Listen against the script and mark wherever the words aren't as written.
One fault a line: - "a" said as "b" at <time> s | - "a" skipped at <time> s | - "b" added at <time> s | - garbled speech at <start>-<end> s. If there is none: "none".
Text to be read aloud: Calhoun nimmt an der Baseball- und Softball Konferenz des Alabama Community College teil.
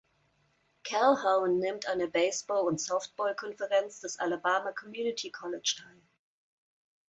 none